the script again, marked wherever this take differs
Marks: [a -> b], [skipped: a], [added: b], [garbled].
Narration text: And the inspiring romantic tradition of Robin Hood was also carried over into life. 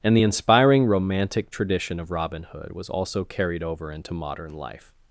And the inspiring romantic tradition of Robin Hood was also carried over into [added: modern] life.